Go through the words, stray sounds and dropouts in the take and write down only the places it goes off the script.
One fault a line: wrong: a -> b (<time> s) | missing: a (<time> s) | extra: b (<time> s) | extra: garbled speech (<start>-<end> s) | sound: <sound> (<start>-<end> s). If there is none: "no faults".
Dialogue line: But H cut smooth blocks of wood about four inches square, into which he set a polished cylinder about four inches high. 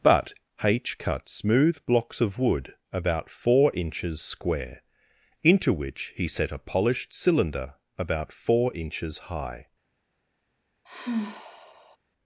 sound: sigh (10.8-12.0 s)